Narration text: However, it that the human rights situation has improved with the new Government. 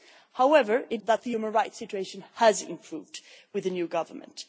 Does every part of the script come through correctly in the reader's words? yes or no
yes